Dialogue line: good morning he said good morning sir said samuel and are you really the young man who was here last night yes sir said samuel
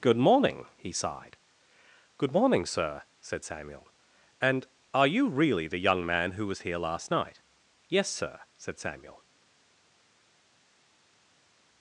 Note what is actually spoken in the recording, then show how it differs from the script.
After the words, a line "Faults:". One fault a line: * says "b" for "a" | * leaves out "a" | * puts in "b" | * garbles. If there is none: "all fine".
good morning he sighed good morning sir said samuel and are you really the young man who was here last night yes sir said samuel
Faults:
* says "sighed" for "said"